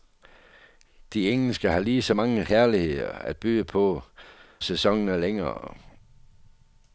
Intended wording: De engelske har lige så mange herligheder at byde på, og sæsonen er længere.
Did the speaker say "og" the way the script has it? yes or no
no